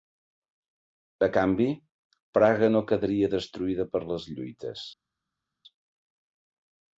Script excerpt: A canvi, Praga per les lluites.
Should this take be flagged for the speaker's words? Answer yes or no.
yes